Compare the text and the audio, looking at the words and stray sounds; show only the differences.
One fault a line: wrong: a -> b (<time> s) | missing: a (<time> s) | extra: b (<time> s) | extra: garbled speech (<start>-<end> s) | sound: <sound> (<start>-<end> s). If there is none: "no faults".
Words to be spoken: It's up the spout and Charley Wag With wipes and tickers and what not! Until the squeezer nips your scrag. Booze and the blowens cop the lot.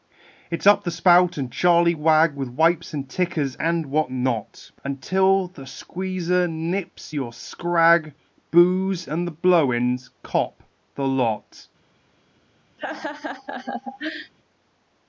sound: laugh (12.8-14.3 s)